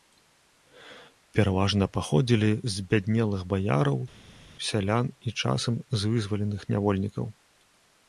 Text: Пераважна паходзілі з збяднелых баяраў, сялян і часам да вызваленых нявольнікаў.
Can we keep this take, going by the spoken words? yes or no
no